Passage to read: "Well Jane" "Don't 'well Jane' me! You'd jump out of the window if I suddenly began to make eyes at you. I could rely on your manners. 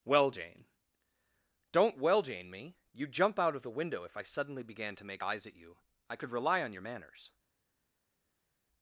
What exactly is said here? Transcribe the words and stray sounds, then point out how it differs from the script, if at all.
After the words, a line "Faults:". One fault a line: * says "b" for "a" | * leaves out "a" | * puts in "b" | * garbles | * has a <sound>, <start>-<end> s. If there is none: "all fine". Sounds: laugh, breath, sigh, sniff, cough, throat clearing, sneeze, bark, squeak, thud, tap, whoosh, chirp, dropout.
"Well Jane" "Don't 'well Jane' me! You'd jump out of the window if I suddenly began to make eyes at you. I could rely on your manners.
Faults:
all fine